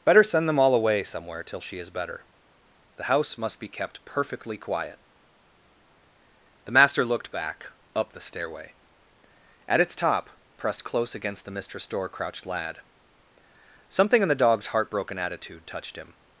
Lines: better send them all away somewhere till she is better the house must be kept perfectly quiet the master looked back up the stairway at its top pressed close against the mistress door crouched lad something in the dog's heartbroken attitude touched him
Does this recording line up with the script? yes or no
yes